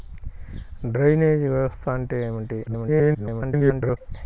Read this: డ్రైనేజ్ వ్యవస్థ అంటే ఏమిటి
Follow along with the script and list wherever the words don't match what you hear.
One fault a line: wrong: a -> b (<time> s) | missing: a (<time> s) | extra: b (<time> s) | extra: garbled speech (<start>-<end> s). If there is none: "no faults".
extra: garbled speech (2.7-4.0 s)